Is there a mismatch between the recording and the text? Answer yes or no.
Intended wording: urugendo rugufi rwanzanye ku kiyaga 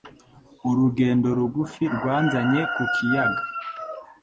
no